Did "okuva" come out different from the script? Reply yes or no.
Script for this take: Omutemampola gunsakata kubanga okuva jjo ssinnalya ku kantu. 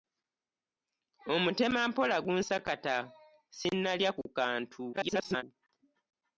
yes